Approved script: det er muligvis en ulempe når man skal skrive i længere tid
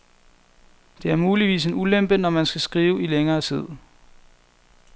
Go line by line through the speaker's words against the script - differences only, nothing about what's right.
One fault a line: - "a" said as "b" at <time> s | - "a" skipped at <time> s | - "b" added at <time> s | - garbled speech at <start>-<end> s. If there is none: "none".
none